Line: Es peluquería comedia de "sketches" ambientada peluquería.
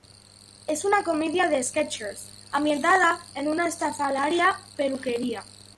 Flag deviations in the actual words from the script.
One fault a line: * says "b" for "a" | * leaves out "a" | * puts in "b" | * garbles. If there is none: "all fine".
* says "una" for "peluquería"
* puts in "en una estrafalaria"